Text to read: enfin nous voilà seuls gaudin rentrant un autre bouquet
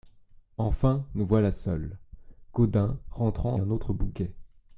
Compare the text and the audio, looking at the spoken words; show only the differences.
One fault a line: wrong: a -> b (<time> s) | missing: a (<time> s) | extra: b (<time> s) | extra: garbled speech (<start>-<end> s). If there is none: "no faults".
no faults